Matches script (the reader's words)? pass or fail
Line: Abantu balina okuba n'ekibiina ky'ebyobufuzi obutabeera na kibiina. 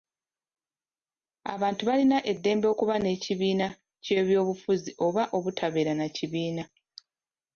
fail